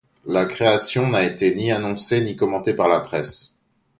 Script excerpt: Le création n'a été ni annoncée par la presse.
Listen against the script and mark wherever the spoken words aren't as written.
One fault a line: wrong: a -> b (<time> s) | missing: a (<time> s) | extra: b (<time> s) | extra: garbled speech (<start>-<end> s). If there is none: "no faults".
wrong: Le -> La (0.2 s)
extra: ni commentée (2.2 s)